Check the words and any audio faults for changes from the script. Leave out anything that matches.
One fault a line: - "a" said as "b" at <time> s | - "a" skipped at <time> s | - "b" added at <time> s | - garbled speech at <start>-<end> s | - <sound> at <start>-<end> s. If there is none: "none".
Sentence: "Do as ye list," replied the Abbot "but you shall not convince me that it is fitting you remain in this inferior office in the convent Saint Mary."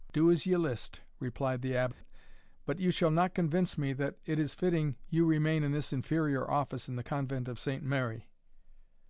- dropout at 1.9-2.0 s
- "of" added at 7.5 s